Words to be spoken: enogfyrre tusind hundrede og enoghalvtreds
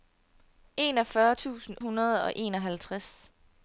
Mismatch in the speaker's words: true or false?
false